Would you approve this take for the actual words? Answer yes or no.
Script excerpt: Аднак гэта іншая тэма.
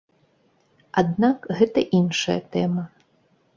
yes